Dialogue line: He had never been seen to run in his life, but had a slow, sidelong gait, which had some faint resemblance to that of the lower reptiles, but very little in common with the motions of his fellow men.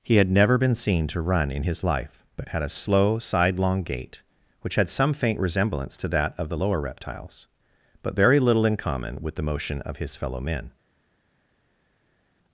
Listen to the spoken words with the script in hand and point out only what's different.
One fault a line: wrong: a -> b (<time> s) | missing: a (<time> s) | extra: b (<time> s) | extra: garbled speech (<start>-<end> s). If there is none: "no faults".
wrong: motions -> motion (9.4 s)